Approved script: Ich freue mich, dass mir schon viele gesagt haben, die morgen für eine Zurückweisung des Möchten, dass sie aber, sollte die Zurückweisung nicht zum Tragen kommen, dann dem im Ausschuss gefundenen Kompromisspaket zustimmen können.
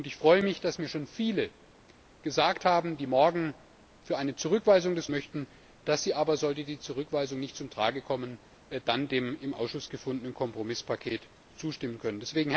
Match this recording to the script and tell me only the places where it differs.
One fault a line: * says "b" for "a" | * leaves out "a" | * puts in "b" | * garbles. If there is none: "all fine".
all fine